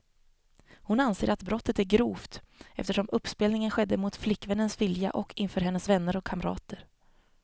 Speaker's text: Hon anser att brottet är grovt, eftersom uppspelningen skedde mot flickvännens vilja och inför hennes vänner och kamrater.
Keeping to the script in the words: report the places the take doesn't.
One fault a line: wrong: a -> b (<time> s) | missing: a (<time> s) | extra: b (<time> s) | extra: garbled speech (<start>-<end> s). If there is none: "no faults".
no faults